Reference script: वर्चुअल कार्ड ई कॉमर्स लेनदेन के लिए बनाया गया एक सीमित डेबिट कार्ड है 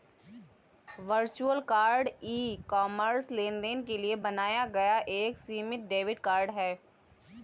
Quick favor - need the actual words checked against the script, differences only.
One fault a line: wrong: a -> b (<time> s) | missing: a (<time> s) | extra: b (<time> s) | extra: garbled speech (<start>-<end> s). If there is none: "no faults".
no faults